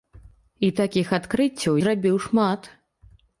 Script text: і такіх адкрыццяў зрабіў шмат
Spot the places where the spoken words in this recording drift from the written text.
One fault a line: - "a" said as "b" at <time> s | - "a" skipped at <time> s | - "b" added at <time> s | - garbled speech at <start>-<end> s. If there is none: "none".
none